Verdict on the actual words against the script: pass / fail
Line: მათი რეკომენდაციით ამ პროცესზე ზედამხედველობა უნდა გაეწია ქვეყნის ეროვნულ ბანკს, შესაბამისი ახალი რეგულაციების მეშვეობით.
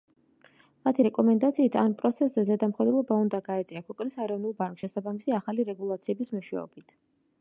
pass